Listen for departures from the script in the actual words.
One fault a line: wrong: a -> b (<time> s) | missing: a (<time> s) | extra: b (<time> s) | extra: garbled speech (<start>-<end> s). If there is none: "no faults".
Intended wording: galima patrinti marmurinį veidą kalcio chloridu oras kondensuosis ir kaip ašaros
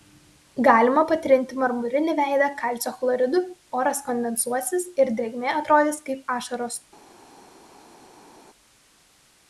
extra: drėgmė atrodys (5.2 s)